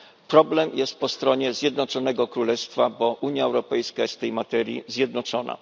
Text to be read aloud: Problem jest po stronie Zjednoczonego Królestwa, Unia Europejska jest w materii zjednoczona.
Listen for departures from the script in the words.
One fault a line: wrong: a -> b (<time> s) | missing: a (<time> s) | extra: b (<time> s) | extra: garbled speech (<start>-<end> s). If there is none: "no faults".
extra: bo (2.9 s)
extra: tej (4.2 s)